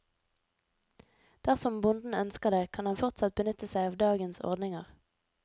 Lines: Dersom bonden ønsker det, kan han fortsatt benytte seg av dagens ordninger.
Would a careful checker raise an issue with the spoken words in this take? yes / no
no